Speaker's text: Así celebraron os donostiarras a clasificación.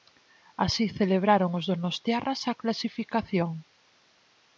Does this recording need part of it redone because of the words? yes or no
no